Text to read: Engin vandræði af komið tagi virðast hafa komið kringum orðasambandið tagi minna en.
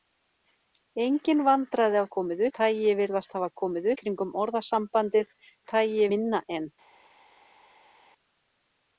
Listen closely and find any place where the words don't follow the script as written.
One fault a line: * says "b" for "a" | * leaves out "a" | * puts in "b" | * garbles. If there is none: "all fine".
all fine